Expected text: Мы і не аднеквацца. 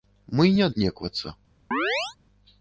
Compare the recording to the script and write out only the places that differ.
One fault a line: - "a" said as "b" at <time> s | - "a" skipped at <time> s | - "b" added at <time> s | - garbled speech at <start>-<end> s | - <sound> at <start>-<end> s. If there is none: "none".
- chirp at 1.7-2.2 s